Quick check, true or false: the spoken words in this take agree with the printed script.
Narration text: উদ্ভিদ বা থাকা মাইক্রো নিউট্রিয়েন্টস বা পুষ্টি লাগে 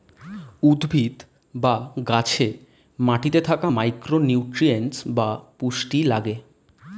false